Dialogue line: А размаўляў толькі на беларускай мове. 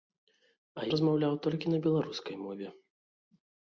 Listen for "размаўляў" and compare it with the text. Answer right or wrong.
right